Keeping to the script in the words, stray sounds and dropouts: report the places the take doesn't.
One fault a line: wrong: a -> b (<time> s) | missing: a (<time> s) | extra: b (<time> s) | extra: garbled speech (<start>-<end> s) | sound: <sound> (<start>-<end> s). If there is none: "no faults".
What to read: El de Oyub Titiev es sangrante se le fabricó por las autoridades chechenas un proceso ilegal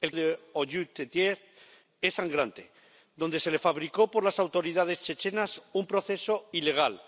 no faults